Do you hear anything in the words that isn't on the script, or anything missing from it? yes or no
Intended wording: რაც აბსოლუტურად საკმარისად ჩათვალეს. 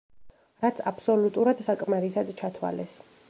no